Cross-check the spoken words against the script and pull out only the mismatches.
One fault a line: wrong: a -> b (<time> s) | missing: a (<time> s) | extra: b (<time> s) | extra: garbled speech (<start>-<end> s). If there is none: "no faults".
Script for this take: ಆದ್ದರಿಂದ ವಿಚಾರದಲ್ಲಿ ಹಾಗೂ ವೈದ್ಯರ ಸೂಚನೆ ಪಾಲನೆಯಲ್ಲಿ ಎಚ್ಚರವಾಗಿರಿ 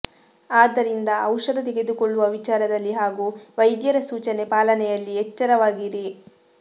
extra: ಔಷಧ ತೆಗೆದುಕೊಳ್ಳುವ (1.2 s)